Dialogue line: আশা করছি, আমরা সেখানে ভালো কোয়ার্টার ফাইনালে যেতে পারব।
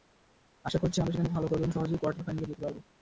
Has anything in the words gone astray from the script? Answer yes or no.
yes